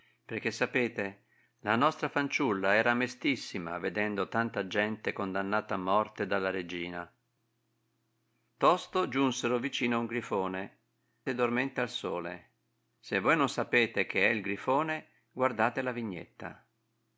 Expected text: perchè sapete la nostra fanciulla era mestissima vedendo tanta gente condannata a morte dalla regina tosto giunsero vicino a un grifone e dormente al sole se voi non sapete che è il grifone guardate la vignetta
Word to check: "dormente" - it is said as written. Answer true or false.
true